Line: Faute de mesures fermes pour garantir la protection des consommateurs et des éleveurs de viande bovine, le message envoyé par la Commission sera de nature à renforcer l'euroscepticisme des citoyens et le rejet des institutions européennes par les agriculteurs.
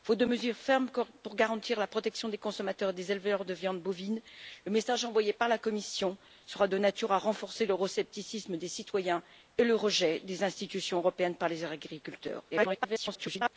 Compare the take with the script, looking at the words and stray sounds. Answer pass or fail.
fail